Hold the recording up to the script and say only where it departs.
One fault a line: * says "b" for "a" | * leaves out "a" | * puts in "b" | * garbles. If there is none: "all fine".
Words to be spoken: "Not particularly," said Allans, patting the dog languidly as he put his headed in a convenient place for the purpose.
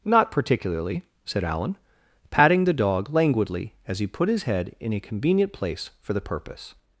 * says "Allan" for "Allans"
* says "head" for "headed"